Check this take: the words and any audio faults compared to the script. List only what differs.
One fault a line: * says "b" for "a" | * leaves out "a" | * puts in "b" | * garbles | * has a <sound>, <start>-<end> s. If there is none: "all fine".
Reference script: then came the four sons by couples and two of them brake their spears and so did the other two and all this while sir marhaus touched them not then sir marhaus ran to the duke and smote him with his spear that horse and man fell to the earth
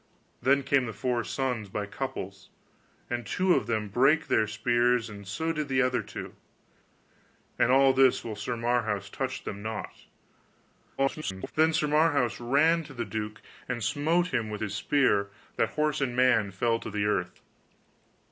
* garbles